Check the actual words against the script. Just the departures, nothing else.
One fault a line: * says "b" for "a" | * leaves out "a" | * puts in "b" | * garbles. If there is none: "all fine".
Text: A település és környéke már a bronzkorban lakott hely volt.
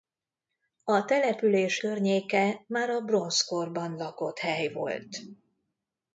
* leaves out "és"